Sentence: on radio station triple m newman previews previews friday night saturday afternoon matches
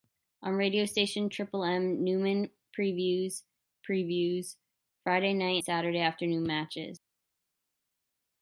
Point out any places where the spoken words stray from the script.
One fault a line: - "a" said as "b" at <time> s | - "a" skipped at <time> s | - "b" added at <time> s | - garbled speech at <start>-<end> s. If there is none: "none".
none